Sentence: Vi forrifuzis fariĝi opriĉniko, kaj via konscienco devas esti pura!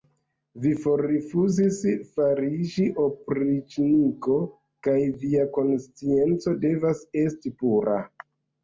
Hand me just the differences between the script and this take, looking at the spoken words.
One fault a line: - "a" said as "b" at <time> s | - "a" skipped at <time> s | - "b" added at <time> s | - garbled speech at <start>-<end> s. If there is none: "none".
none